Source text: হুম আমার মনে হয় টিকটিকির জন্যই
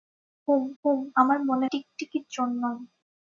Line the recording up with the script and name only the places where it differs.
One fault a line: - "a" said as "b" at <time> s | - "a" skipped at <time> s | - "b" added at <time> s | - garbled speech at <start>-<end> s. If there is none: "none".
- "হুম" added at 0.8 s
- "হয়" skipped at 1.7 s